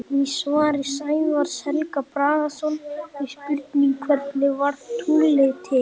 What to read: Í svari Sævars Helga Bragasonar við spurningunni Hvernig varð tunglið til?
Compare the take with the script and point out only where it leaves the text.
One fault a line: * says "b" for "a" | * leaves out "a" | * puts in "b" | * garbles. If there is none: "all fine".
all fine